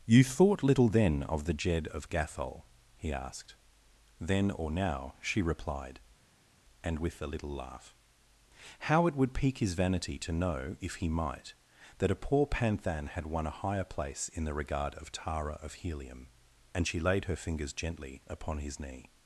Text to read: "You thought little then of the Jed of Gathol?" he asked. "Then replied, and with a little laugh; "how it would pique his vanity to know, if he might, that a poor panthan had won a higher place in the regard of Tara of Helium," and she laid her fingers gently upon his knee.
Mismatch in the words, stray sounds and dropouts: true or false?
true